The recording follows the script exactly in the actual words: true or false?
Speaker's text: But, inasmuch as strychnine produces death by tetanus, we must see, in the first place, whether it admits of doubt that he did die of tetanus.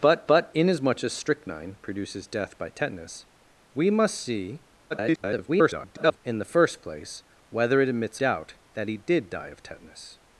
false